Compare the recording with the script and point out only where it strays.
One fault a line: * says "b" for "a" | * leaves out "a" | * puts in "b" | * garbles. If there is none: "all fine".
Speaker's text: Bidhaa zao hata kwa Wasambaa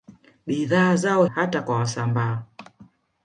all fine